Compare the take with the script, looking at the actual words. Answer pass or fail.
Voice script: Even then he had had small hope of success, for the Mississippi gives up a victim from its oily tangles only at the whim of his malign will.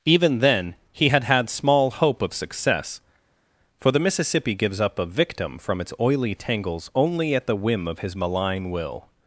pass